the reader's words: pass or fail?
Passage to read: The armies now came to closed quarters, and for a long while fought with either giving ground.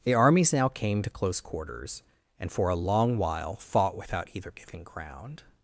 fail